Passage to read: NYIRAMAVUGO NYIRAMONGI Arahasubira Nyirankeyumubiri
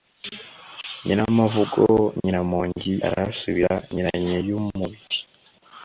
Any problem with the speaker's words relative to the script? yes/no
no